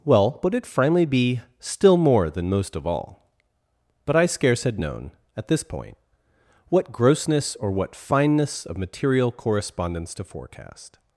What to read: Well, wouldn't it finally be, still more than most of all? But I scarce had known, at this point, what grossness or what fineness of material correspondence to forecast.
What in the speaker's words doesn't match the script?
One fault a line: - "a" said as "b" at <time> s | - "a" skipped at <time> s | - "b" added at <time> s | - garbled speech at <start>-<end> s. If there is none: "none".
- "wouldn't" said as "would" at 0.4 s